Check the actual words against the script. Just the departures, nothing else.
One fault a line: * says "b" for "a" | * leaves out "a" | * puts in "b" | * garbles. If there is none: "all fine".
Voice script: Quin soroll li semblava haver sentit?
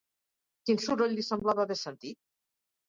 all fine